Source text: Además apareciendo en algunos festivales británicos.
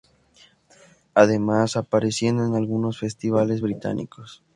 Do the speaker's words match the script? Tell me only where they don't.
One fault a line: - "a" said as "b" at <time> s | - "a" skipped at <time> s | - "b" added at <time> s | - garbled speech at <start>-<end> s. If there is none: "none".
none